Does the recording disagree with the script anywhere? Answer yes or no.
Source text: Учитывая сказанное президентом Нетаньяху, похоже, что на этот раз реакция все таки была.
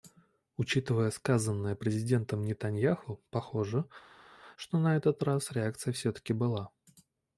no